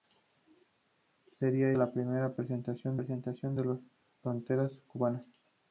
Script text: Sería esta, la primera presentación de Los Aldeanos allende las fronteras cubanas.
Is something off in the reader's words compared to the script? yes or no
yes